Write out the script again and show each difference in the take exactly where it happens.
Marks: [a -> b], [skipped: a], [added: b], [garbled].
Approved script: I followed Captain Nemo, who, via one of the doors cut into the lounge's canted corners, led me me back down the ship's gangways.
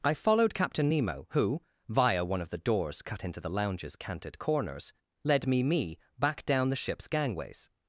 I followed Captain Nemo, who, via one of the doors cut into the lounge's canted corners, led me me back down the ship's gangways.